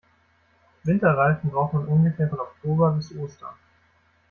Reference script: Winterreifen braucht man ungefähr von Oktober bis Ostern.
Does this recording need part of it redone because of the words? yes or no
no